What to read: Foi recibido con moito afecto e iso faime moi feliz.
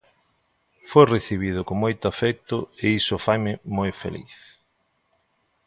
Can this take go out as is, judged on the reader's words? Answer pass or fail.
pass